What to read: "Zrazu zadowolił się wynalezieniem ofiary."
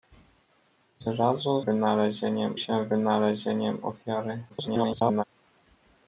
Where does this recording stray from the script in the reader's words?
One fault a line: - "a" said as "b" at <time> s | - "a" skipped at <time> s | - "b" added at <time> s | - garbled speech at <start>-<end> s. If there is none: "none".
- "zadowolił" said as "wynalezieniem" at 1.6 s
- garbled speech at 4.5-5.2 s